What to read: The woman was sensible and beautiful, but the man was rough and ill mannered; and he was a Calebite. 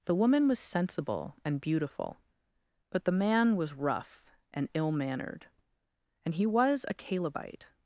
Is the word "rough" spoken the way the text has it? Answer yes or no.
yes